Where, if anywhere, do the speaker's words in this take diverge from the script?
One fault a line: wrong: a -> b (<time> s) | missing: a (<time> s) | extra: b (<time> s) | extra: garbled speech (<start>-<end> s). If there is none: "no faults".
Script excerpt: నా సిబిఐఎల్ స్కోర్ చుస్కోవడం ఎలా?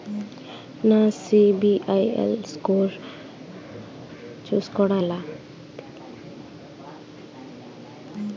no faults